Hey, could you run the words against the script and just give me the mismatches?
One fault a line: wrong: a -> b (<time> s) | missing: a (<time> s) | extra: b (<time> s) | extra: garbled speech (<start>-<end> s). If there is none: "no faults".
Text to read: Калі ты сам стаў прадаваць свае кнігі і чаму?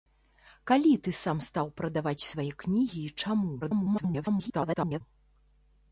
extra: garbled speech (3.6-5.0 s)